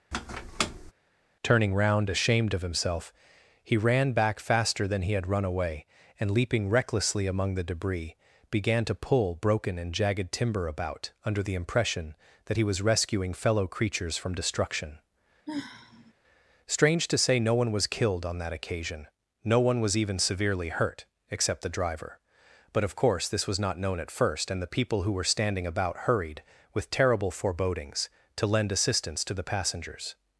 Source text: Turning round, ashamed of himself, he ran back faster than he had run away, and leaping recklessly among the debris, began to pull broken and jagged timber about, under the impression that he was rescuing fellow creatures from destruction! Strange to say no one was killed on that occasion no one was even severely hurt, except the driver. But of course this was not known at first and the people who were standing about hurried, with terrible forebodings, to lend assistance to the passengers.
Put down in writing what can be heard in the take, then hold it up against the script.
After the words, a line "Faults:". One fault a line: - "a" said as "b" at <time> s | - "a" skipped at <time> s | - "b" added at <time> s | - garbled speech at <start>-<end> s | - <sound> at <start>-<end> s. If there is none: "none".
Turning round, ashamed of himself, he ran back faster than he had run away, and leaping recklessly among the debris, began to pull broken and jagged timber about, under the impression that he was rescuing fellow creatures from destruction! Strange to say no one was killed on that occasion no one was even severely hurt, except the driver. But of course this was not known at first and the people who were standing about hurried, with terrible forebodings, to lend assistance to the passengers.
Faults:
- squeak at 0.1-0.9 s
- sigh at 15.5-16.1 s